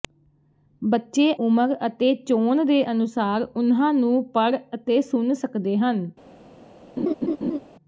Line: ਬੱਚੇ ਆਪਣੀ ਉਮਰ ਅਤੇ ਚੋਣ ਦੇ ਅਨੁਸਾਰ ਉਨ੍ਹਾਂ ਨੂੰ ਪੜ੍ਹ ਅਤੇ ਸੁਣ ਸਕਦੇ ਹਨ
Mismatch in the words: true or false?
true